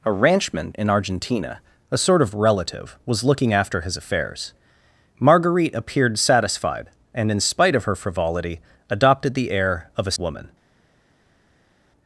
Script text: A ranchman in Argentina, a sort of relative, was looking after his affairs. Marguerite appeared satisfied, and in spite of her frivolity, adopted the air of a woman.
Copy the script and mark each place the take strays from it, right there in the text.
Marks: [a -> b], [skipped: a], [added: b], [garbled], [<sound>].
A ranchman in Argentina, a sort of relative, was looking after his affairs. Marguerite appeared satisfied, and in spite of her frivolity, adopted the air of a woman.